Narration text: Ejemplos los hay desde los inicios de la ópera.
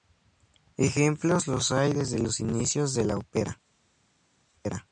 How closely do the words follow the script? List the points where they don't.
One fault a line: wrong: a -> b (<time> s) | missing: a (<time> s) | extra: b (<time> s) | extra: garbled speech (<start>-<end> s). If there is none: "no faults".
no faults